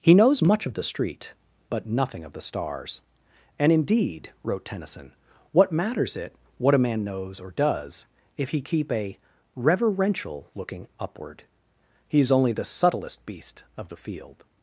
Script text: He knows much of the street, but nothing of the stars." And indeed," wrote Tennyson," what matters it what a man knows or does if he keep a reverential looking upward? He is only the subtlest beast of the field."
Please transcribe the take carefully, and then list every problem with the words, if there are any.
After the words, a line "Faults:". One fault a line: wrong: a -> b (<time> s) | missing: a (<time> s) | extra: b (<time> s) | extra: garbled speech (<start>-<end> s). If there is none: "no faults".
He knows much of the street, but nothing of the stars." And indeed," wrote Tennyson," what matters it what a man knows or does if he keep a reverential looking upward? He is only the subtlest beast of the field."
Faults:
no faults